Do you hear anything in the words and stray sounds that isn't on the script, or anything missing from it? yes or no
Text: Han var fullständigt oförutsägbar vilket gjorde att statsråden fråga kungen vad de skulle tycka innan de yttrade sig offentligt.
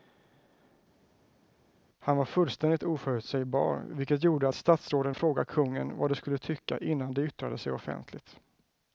no